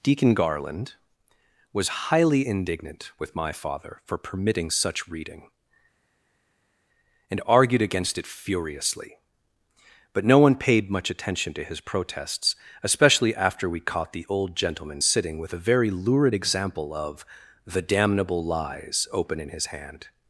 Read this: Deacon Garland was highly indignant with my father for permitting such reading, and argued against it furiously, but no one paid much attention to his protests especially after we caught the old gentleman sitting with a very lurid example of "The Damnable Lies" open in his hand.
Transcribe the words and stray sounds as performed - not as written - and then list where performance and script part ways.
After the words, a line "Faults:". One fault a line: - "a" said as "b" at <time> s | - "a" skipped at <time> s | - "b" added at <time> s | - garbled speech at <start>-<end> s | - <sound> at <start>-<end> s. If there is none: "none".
Deacon Garland was highly indignant with my father for permitting such reading, and argued against it furiously, but no one paid much attention to his protests especially after we caught the old gentleman sitting with a very lurid example of "The Damnable Lies" open in his hand.
Faults:
none